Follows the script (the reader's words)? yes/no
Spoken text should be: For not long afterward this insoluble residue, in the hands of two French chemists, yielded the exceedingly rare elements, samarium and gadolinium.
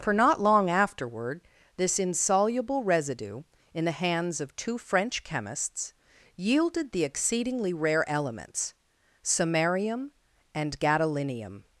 yes